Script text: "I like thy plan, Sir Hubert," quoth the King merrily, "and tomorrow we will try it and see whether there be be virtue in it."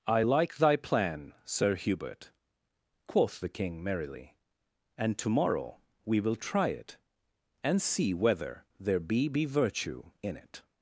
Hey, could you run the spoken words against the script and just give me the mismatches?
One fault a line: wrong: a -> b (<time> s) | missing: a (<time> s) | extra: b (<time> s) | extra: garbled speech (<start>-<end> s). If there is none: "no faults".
no faults